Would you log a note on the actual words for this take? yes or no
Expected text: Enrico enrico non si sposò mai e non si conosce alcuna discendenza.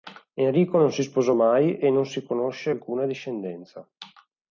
yes